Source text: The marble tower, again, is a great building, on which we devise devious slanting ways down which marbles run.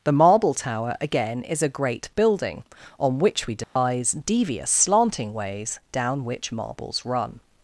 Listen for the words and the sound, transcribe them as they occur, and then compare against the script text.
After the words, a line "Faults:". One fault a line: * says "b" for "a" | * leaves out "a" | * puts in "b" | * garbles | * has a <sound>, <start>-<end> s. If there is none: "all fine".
The marble tower, again, is a great building, on which we devise devious slanting ways down which marbles run.
Faults:
* has a dropout, 3.6-3.8 s